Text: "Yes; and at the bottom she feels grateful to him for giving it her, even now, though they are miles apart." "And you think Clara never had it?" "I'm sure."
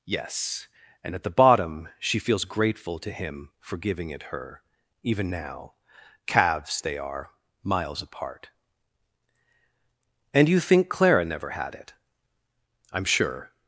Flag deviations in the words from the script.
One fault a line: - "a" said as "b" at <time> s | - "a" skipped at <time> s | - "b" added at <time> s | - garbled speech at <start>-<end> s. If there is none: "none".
- "though" said as "calves" at 6.2 s